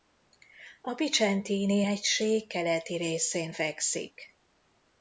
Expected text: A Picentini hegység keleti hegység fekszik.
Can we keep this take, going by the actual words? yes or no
no